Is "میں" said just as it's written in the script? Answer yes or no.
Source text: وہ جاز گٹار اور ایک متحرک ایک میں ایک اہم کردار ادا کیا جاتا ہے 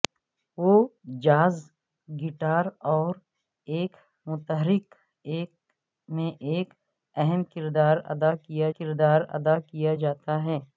yes